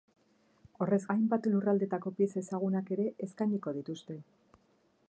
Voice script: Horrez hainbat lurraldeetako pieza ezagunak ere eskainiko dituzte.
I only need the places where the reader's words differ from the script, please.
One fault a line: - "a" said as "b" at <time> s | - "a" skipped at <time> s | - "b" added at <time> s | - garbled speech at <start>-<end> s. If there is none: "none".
none